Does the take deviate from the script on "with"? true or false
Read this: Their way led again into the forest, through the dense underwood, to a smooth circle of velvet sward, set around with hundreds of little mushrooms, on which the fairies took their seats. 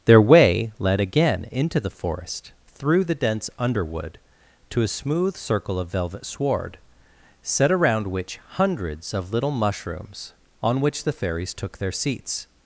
true